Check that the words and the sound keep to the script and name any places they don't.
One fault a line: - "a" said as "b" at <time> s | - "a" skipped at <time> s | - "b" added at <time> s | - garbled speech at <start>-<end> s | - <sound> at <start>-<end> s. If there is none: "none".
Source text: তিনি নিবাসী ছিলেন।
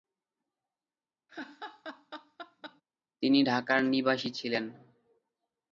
- laugh at 1.3-2.8 s
- "ঢাকার" added at 3.4 s